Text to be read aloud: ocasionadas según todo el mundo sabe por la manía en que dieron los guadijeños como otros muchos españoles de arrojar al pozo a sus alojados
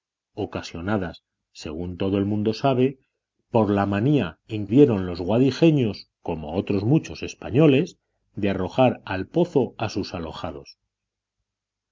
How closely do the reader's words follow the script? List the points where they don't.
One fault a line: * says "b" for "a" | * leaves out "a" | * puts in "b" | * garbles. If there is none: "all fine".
* leaves out "que"